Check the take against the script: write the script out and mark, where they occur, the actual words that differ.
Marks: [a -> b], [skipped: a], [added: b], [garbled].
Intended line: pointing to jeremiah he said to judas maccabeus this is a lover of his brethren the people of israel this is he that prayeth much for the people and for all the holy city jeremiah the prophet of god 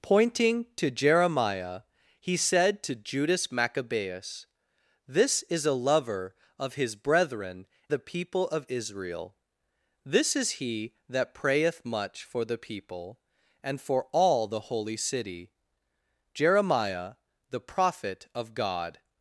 pointing to jeremiah he said to judas maccabeus this is a lover of his brethren the people of israel this is he that prayeth much for the people and for all the holy city jeremiah the prophet of god